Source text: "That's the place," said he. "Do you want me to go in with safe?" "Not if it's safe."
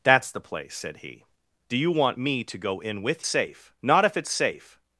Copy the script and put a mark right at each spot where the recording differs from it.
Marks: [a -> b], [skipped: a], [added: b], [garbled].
"That's the place," said he. "Do you want me to go in with safe?" "Not if it's safe."